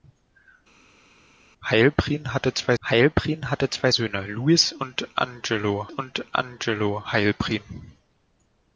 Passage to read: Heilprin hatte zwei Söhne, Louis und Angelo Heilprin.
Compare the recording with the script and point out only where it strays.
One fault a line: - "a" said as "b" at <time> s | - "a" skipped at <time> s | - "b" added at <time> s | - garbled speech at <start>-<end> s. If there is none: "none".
- "heilprin hatte zwei" added at 2.8 s
- "und Angelo" added at 5.9 s